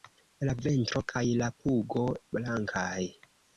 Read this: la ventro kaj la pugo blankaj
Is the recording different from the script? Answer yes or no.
no